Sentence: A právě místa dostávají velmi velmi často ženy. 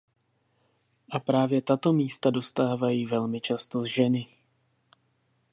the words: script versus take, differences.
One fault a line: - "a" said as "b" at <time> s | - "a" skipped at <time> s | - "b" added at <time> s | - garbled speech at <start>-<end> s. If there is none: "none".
- "tato" added at 1.6 s
- "velmi" skipped at 3.4 s